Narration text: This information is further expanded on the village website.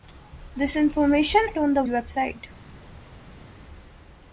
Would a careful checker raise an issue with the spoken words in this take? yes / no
yes